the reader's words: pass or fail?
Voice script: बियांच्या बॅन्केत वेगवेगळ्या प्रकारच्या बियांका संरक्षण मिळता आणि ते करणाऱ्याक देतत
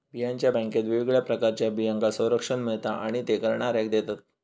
pass